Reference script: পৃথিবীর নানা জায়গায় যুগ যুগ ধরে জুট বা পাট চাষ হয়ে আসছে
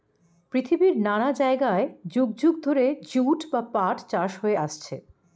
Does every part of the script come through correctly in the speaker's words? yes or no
yes